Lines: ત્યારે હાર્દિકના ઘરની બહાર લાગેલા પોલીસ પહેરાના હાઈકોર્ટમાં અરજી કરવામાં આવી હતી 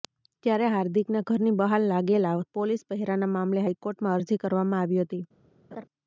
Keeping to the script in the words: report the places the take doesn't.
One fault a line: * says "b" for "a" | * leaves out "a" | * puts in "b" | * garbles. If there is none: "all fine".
* puts in "મામલે"